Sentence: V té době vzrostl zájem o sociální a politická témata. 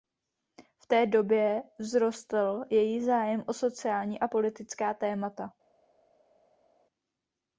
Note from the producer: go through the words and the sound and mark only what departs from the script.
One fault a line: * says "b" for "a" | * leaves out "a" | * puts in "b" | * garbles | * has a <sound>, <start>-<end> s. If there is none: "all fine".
* puts in "její"